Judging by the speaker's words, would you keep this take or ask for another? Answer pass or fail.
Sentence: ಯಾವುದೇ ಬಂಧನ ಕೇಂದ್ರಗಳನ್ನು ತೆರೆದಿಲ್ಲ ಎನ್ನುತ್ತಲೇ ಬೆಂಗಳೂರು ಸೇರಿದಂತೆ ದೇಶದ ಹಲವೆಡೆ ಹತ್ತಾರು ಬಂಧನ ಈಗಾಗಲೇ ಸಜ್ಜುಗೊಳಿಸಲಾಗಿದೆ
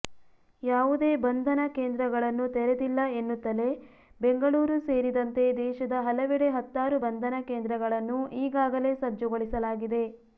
fail